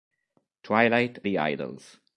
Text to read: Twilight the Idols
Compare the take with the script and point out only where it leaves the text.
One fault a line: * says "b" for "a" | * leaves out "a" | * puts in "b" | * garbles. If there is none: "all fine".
all fine